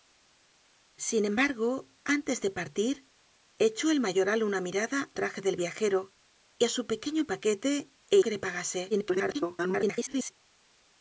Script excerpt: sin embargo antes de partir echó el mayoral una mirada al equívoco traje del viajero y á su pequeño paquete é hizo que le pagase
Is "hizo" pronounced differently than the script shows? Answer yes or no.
yes